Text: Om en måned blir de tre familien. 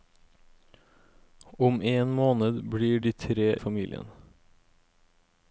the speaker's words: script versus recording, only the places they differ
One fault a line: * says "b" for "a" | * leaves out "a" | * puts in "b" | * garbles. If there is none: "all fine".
all fine